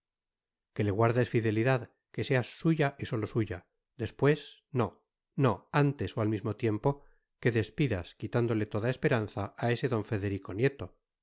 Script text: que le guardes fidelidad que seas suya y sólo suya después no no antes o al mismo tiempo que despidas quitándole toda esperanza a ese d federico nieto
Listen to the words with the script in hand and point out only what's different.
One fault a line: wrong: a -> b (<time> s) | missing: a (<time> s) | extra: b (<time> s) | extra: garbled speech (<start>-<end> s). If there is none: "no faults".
no faults